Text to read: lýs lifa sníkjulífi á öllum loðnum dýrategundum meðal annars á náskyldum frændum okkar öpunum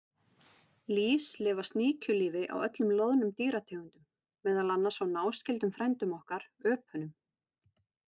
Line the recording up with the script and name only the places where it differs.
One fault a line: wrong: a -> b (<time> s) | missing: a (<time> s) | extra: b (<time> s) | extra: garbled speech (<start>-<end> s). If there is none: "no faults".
no faults